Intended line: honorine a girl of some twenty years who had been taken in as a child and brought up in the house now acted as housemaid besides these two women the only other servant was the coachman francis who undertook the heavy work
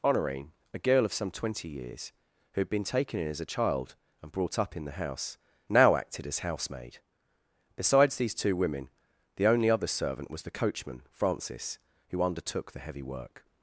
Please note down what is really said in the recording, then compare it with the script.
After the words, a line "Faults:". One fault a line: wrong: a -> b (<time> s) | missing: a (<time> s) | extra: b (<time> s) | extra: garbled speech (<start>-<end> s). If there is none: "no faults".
honorine a girl of some twenty years who had been taken in as a child and brought up in the house now acted as housemaid besides these two women the only other servant was the coachman francis who undertook the heavy work
Faults:
no faults